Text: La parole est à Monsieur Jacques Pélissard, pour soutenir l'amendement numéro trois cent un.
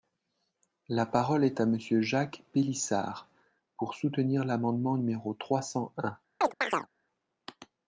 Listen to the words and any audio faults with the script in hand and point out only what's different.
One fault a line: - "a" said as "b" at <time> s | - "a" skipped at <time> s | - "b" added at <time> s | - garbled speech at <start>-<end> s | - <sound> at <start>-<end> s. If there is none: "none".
- chirp at 6.4-6.9 s